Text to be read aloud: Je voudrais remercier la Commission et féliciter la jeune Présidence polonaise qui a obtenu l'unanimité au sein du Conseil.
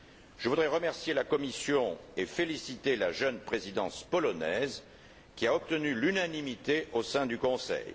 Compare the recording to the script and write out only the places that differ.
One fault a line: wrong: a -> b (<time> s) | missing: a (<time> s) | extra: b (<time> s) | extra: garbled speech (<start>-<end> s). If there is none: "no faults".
no faults